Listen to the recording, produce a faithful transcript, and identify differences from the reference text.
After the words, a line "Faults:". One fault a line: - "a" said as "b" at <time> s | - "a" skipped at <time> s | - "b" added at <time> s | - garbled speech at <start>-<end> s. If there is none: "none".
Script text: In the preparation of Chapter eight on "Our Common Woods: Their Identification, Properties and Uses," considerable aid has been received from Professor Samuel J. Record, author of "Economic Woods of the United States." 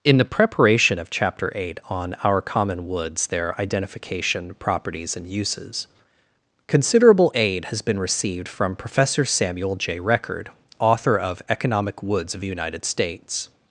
In the preparation of Chapter eight on "Our Common Woods: Their Identification, Properties and Uses," considerable aid has been received from Professor Samuel J. Record, author of "Economic Woods of the United States."
Faults:
none